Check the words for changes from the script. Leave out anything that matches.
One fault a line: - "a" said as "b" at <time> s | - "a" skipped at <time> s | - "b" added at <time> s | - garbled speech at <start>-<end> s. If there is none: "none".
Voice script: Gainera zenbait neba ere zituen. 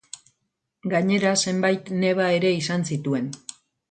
- "izan" added at 2.6 s